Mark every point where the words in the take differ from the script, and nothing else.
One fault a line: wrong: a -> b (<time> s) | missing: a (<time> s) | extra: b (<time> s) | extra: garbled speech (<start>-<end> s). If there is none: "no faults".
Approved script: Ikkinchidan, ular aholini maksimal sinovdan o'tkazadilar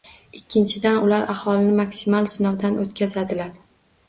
no faults